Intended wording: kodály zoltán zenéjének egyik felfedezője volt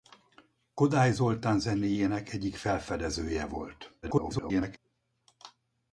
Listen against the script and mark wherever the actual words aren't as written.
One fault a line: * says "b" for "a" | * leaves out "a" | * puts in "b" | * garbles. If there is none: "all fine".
* garbles